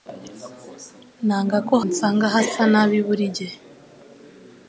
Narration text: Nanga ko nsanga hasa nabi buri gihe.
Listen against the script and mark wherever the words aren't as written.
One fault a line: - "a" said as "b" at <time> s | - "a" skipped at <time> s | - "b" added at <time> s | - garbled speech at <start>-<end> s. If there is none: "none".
none